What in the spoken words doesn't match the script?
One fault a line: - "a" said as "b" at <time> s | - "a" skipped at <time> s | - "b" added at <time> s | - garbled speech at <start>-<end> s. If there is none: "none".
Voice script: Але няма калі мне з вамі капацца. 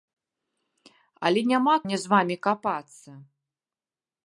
- "калі" skipped at 1.8 s